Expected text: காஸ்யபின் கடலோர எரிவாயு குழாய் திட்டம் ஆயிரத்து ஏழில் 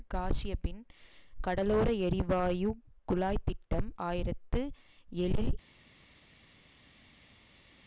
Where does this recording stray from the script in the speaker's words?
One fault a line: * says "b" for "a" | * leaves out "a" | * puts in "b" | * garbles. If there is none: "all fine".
all fine